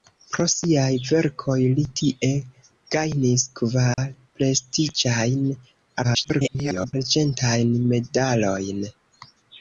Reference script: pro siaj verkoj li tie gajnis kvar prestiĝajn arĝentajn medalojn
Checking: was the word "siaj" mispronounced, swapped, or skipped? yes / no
no